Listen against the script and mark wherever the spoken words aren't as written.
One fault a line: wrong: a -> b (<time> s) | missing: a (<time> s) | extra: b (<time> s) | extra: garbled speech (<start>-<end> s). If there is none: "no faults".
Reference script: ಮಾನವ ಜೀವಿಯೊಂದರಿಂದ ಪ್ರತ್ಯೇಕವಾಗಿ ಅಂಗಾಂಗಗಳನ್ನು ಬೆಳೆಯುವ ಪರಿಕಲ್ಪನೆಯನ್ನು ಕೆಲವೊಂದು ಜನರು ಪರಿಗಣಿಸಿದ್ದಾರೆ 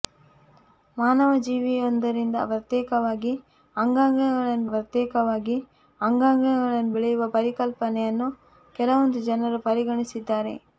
extra: ಪ್ರತ್ಯೇಕವಾಗಿ ಅಂಗಾಂಗಗಳನ್ನು (4.7 s)